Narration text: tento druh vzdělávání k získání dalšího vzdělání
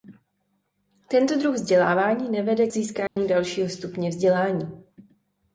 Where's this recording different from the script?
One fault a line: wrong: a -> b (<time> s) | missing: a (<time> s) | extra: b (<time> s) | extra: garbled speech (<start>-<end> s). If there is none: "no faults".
extra: nevede (2.3 s)
extra: stupně (3.7 s)